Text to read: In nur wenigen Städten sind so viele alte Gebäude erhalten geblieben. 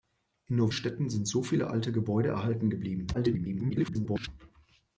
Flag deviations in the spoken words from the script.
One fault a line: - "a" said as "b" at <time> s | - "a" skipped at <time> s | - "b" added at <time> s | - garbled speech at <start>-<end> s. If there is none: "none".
- "wenigen" skipped at 0.7 s
- garbled speech at 3.1-4.3 s